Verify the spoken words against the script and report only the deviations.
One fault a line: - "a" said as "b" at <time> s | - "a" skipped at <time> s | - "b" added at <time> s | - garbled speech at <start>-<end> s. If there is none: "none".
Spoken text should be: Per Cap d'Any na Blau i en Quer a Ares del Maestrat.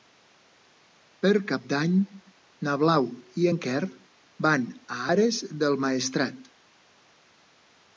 - "van" added at 4.5 s